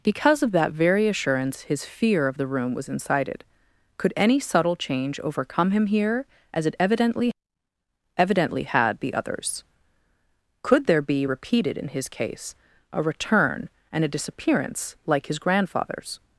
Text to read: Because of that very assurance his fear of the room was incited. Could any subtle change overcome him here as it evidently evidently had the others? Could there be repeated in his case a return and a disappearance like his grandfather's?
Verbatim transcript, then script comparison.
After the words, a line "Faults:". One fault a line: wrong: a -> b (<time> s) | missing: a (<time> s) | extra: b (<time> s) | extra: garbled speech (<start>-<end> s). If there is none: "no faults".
Because of that very assurance his fear of the room was incited. Could any subtle change overcome him here as it evidently evidently had the others? Could there be repeated in his case a return and a disappearance like his grandfather's?
Faults:
no faults